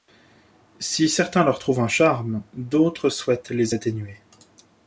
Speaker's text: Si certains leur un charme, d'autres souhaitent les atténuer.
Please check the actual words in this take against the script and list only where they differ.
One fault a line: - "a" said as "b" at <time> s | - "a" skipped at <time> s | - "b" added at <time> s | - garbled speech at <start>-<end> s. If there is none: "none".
- "trouvent" added at 1.6 s